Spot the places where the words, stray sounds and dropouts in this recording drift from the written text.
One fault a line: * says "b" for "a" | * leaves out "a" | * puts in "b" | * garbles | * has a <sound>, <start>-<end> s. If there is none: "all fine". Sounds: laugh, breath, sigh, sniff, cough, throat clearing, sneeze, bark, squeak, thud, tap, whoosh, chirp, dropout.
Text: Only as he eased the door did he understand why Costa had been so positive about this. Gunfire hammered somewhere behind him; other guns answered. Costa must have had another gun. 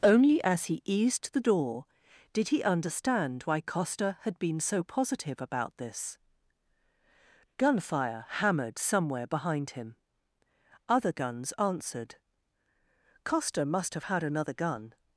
all fine